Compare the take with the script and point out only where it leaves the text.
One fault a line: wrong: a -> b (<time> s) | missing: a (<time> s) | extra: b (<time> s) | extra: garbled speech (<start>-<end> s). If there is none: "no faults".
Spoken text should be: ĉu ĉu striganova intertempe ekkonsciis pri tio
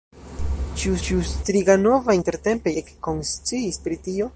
no faults